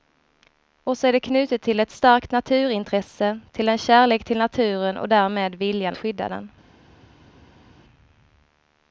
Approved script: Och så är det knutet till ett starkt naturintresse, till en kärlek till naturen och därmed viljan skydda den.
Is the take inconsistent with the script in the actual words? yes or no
no